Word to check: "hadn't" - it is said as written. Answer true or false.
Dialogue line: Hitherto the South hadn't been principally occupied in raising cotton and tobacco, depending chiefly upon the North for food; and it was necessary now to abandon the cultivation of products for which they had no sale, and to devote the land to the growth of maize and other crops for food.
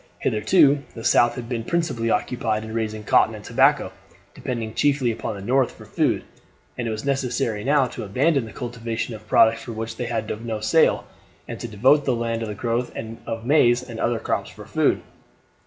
false